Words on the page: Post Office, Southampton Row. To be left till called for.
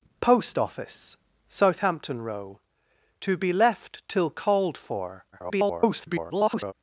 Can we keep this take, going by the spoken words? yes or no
no